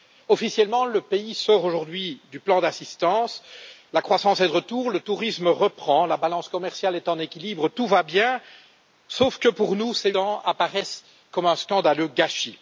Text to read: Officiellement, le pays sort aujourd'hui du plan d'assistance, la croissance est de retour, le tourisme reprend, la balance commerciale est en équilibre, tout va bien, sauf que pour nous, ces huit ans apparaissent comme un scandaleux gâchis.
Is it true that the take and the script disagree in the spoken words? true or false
true